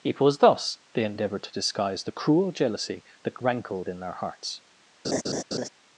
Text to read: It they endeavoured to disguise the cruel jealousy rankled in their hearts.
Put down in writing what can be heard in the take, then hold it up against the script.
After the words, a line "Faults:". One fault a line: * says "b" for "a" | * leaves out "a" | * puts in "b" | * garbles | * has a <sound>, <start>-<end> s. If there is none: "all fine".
It was thus they endeavoured to disguise the cruel jealousy that rankled in their hearts.
Faults:
* puts in "was thus"
* puts in "that"
* has a laugh, 5.0-5.7 s